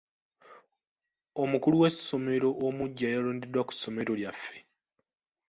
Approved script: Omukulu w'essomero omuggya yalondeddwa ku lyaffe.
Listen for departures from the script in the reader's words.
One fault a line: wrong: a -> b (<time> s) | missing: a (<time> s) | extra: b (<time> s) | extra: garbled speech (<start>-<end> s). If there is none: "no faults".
extra: ssomero (3.8 s)